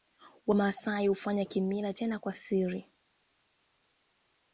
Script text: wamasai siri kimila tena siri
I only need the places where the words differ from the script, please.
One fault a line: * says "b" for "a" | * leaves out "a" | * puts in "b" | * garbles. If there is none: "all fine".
* says "hufanya" for "siri"
* puts in "kwa"